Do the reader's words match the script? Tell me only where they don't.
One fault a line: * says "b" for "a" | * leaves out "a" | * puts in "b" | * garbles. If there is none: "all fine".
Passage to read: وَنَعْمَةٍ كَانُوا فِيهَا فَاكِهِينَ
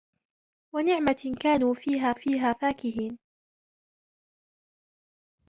* puts in "فِيهَا"